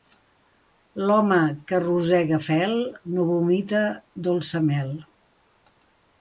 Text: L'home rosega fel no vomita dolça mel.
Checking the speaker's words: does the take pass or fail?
fail